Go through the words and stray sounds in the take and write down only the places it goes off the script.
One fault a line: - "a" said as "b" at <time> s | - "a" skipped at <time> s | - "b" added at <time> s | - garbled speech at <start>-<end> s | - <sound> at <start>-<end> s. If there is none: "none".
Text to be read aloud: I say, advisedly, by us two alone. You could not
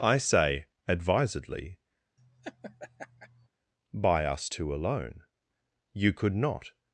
- laugh at 2.2-3.5 s